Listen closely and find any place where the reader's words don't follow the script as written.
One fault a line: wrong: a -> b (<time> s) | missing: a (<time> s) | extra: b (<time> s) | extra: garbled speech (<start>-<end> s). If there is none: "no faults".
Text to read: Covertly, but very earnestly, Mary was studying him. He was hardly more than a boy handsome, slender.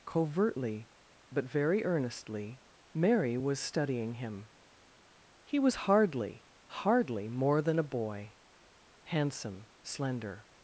extra: hardly (6.8 s)